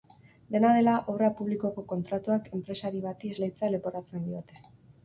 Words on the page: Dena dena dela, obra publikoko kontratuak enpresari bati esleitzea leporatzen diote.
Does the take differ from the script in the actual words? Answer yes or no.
yes